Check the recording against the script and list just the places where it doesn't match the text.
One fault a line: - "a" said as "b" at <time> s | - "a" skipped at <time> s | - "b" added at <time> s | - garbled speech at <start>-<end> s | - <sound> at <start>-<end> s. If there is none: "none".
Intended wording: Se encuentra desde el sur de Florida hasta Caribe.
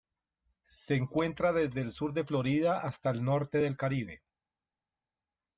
- "el norte del" added at 3.1 s